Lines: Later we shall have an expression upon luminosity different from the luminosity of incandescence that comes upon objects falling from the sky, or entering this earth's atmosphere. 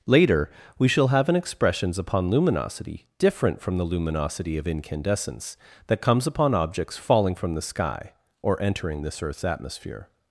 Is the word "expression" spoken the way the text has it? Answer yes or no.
no